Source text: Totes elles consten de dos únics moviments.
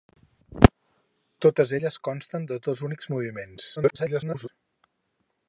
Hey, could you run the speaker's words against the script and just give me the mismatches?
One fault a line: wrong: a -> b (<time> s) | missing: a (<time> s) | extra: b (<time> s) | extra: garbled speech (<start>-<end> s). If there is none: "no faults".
extra: garbled speech (3.8-4.5 s)